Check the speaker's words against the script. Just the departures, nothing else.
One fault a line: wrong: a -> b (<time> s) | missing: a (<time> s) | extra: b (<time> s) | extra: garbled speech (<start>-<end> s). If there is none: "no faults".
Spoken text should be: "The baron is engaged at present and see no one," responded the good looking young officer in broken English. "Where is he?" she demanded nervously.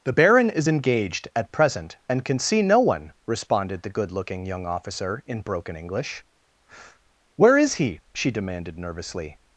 extra: can (2.2 s)